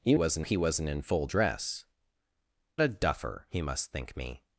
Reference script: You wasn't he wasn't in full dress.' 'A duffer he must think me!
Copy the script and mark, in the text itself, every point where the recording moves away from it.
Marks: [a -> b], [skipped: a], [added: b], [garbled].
You wasn't he wasn't in full dress.' 'A duffer he must think me!